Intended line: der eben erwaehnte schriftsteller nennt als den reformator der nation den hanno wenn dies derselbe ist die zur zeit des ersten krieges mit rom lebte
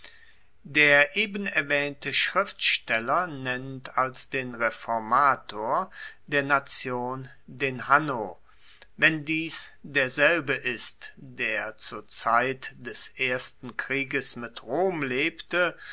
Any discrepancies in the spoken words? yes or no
yes